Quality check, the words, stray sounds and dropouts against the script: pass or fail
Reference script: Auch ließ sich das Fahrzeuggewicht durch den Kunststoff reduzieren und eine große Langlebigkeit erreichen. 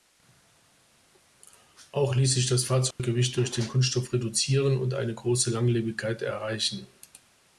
fail